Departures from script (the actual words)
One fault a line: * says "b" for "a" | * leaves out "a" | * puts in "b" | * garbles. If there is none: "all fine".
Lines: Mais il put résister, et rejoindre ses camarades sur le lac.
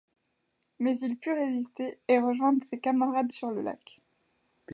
all fine